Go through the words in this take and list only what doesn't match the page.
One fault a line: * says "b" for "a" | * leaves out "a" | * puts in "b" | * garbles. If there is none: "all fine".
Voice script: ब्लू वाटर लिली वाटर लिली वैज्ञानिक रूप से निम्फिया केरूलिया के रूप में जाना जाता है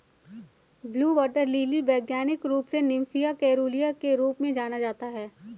* leaves out "वाटर लिली"